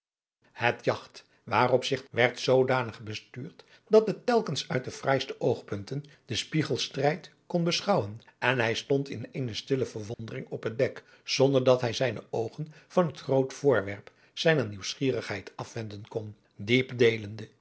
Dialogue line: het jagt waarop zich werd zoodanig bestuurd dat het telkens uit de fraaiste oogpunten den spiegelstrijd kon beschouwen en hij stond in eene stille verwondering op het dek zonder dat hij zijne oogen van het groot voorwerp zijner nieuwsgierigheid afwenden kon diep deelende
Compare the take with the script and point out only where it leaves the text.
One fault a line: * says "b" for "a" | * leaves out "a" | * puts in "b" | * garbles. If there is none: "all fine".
all fine